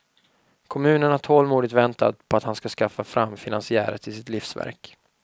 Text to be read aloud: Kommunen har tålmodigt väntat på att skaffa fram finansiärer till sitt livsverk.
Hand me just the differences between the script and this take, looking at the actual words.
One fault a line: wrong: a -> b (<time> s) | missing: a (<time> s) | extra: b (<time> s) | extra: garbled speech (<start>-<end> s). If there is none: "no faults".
extra: han ska (2.4 s)